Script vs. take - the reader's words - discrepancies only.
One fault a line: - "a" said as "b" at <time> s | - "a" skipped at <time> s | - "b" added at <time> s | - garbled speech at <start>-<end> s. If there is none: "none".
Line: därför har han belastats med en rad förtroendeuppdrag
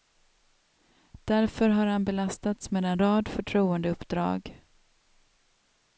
none